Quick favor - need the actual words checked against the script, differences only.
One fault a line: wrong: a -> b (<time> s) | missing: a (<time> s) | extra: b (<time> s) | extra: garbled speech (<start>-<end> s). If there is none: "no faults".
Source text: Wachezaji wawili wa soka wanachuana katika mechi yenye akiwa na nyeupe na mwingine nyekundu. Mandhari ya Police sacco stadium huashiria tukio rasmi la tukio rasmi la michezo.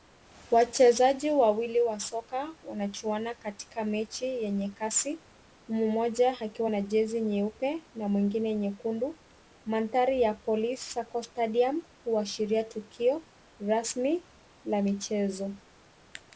extra: kasi mmoja (4.7 s)
extra: jezi (6.8 s)
missing: tukio rasmi la (14.8 s)